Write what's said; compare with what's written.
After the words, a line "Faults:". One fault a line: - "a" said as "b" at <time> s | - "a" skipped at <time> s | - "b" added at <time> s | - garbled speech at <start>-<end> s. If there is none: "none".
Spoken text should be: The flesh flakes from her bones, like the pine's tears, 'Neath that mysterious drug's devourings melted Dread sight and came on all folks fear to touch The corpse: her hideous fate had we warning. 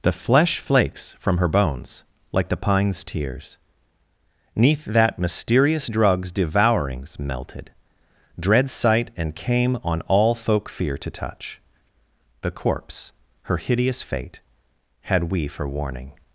The flesh flakes from her bones, like the pine's tears, 'Neath that mysterious drug's devourings melted Dread sight and came on all folk fear to touch The corpse: her hideous fate had we for warning.
Faults:
- "folks" said as "folk" at 10.3 s
- "for" added at 15.5 s